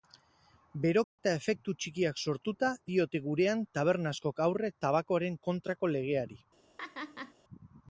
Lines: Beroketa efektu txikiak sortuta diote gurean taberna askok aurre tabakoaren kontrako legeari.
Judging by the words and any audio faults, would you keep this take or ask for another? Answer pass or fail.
fail